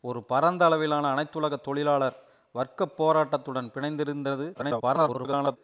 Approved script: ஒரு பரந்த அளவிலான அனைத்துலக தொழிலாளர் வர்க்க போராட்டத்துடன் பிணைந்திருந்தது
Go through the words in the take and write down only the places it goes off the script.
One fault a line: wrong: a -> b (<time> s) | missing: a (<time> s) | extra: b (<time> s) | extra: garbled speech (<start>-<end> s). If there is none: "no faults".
extra: garbled speech (4.5-5.6 s)